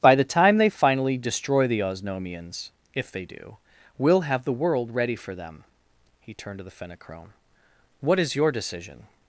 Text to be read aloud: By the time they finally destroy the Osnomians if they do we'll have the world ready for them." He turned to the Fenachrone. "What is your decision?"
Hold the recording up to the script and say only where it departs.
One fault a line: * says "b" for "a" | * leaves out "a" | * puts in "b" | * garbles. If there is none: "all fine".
all fine